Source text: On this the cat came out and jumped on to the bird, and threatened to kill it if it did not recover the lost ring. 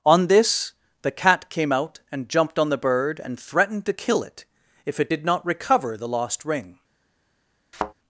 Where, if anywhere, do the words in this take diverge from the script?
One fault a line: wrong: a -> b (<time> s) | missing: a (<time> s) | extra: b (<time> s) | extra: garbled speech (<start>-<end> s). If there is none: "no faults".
missing: to (2.7 s)